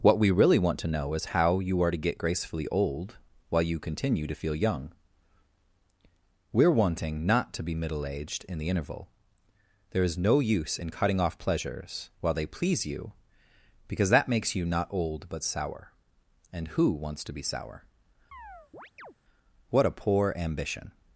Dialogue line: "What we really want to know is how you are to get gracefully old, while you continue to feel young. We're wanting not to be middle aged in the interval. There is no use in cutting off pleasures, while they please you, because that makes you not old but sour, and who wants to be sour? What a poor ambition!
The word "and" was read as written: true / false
true